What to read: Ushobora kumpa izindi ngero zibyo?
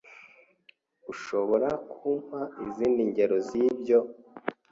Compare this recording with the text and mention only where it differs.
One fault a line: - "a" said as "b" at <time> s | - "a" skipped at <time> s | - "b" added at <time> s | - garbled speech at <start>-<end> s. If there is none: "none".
none